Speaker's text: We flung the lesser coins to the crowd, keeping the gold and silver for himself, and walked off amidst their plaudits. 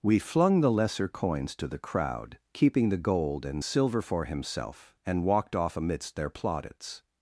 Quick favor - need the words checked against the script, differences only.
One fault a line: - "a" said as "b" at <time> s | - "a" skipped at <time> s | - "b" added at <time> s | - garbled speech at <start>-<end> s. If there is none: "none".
none